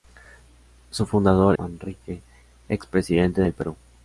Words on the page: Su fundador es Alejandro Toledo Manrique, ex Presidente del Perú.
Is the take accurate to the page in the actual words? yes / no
no